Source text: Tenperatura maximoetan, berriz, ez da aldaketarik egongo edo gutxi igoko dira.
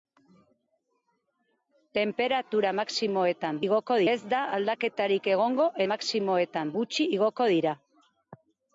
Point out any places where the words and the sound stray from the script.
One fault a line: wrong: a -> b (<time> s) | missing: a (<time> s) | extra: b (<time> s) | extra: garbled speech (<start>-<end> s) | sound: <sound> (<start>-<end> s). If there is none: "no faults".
wrong: berriz -> igoko (3.7 s)
wrong: edo -> maximoetan (5.9 s)